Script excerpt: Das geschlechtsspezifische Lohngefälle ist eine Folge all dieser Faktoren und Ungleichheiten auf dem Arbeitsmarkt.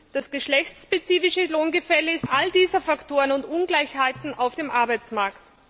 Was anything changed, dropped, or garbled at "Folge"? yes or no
yes